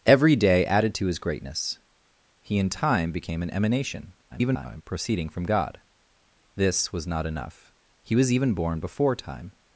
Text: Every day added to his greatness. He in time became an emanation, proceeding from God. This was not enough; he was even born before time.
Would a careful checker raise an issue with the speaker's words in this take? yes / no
yes